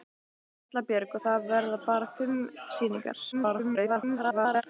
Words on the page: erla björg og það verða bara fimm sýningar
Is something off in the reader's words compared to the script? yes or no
yes